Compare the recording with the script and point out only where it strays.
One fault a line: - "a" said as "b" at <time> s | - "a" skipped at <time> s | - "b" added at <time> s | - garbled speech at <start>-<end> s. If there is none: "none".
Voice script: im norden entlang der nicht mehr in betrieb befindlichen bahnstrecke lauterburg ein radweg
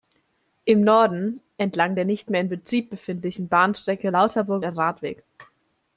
none